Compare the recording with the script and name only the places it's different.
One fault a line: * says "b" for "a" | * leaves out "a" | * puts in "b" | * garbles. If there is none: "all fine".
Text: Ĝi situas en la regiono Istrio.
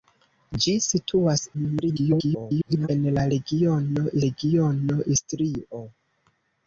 * garbles
* puts in "regiono"